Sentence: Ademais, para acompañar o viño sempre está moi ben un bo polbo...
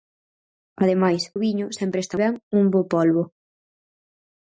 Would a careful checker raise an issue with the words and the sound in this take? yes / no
yes